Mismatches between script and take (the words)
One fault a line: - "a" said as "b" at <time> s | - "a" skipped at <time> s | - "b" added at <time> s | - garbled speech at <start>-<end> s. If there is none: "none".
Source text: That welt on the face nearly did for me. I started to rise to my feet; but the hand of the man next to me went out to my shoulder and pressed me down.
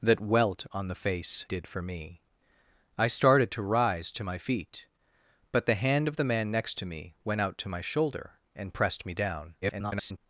- "nearly" skipped at 1.4 s
- garbled speech at 9.6-10.2 s